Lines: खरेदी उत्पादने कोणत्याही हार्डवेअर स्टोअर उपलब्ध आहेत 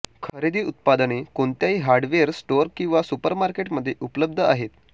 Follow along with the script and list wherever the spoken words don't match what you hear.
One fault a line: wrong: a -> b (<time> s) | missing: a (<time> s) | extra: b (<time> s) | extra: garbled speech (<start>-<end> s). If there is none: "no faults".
extra: किंवा सुपरमार्केट मध्ये (2.8 s)